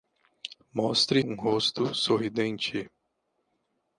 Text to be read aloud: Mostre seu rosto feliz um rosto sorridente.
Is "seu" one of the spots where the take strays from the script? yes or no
yes